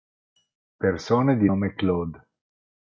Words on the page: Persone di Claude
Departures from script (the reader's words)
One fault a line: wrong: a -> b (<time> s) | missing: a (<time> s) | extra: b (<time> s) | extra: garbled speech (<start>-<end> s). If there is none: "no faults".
extra: nome (1.4 s)